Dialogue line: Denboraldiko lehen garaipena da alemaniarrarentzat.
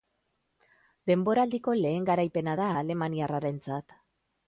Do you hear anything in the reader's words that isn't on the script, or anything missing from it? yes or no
no